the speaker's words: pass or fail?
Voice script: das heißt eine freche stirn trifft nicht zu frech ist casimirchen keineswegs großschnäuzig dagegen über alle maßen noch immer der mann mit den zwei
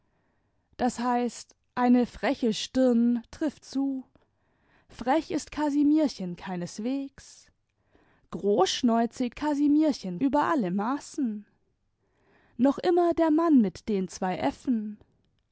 fail